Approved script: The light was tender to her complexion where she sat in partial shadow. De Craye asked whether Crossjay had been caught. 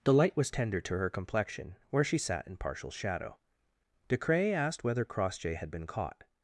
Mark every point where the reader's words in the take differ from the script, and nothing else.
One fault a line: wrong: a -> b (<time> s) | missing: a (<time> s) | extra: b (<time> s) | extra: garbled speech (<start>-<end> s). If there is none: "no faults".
no faults